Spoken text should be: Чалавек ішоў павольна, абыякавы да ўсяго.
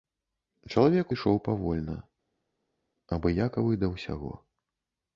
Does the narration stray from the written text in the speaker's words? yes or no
no